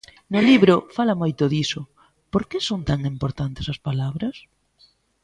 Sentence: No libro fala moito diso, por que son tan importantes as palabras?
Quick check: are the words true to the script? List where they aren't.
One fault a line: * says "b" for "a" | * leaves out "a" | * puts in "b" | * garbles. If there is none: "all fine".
all fine